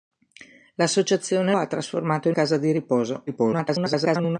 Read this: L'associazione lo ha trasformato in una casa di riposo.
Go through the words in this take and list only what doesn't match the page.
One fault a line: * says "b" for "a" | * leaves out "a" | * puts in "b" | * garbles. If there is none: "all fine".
* leaves out "lo"
* leaves out "una"
* garbles